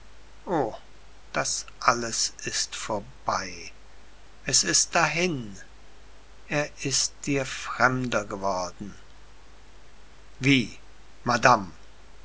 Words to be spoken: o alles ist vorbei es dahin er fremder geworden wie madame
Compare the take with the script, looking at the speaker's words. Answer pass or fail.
fail